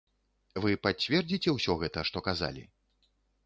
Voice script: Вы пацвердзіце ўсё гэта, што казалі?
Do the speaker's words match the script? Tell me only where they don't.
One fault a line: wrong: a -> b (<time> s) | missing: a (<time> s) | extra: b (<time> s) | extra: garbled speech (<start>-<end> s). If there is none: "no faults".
no faults